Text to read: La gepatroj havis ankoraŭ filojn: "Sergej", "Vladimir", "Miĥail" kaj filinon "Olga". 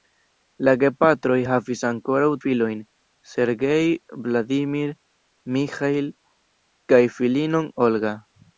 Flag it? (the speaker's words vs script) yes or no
no